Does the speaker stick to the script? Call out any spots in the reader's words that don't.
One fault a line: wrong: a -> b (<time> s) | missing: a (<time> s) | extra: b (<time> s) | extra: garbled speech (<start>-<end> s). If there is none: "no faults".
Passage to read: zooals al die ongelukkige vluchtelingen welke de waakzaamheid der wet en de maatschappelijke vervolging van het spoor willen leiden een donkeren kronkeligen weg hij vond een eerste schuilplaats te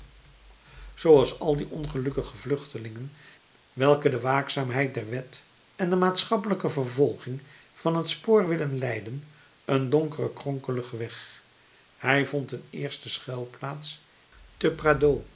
no faults